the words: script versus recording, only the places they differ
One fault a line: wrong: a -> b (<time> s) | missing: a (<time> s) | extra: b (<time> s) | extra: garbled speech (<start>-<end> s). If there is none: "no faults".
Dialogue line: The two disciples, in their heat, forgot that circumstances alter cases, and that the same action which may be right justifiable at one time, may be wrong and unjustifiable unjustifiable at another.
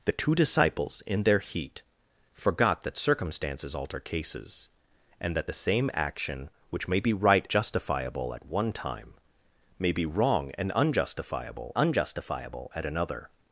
no faults